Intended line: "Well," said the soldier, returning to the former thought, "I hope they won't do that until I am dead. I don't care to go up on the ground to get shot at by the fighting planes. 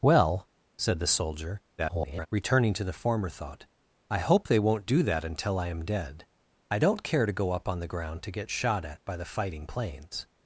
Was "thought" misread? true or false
false